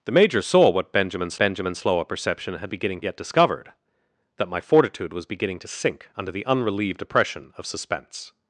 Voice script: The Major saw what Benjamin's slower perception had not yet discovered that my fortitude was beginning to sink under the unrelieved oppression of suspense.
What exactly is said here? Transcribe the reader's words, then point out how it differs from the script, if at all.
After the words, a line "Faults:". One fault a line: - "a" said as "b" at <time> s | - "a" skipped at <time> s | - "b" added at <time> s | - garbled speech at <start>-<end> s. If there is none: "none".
The Major saw what Benjamin's Benjamin's slower perception had beginning yet discovered that my fortitude was beginning to sink under the unrelieved oppression of suspense.
Faults:
- "Benjamin's" added at 1.4 s
- "not" said as "beginning" at 2.7 s